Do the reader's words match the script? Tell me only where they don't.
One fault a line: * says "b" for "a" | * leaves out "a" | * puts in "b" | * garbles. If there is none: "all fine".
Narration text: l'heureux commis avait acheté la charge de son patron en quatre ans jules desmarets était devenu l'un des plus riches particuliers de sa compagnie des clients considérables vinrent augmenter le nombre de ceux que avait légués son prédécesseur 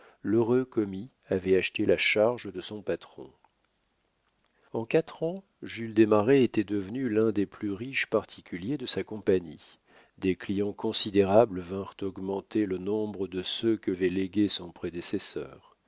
all fine